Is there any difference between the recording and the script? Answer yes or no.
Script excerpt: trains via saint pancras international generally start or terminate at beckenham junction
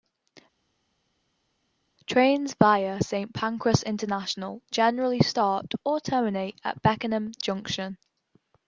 no